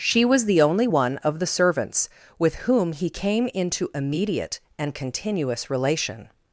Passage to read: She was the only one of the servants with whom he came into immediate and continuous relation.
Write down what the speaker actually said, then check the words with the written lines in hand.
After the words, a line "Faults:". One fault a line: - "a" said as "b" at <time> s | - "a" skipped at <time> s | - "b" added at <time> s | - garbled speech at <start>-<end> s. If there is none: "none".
She was the only one of the servants with whom he came into immediate and continuous relation.
Faults:
none